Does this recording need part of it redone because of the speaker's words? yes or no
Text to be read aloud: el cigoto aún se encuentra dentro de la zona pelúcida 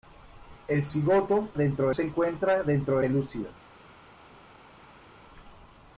yes